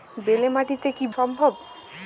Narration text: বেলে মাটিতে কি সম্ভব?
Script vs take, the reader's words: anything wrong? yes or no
no